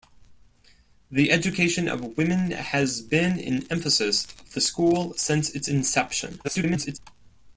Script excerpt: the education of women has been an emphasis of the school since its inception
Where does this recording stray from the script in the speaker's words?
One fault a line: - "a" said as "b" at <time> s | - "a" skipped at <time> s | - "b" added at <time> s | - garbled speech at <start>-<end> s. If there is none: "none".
- garbled speech at 6.4-7.0 s